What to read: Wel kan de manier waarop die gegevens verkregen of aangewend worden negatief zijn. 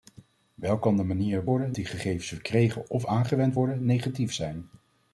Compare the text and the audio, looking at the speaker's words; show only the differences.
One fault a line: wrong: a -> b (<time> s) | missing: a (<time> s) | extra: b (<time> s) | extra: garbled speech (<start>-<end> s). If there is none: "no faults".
wrong: waarop -> worden (1.4 s)